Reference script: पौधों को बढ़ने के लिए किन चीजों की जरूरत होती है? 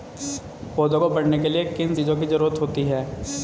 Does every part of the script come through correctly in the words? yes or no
yes